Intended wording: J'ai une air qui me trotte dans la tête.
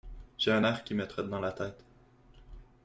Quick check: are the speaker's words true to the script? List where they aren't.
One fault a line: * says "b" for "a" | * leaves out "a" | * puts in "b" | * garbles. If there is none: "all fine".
* says "un" for "une"